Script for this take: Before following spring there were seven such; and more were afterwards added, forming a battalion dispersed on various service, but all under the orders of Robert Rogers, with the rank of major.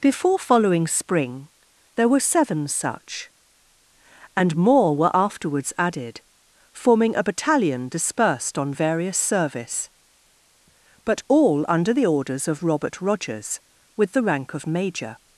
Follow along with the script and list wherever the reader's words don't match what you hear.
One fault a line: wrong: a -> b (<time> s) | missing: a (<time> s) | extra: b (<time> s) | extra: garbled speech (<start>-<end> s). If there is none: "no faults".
no faults